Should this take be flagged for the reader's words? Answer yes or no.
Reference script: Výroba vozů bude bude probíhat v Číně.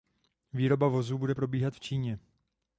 yes